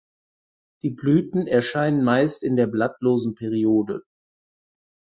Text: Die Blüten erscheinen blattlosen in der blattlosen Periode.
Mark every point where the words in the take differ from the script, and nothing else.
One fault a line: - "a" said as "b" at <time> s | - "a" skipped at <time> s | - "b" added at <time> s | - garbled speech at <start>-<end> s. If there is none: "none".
- "blattlosen" said as "meist" at 2.0 s